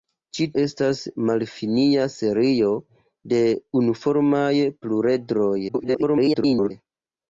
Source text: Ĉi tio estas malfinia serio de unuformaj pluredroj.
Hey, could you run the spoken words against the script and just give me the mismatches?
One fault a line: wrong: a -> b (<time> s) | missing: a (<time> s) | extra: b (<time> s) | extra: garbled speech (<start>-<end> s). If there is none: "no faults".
missing: tio (0.5 s)
extra: garbled speech (5.7-6.7 s)